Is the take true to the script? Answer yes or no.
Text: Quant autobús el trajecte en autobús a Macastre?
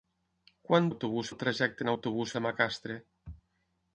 yes